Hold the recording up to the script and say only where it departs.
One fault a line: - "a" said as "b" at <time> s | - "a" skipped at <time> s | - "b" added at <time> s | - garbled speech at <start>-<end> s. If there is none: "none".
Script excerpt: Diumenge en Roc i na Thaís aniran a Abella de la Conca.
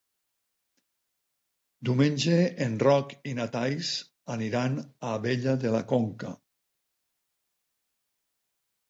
none